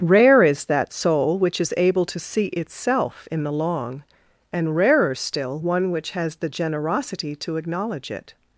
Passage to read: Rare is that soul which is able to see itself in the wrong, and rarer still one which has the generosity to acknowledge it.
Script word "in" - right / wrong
right